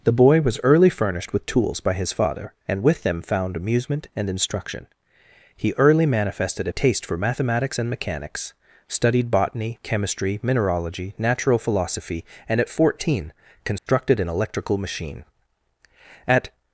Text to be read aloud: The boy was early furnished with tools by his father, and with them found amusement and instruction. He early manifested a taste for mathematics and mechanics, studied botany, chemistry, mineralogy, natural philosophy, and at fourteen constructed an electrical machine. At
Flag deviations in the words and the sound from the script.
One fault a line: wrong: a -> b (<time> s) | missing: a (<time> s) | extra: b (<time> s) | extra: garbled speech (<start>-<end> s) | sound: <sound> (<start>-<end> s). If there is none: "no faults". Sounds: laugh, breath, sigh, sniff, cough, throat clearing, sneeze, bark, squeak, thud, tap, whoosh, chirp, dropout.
sound: dropout (13.8-13.9 s)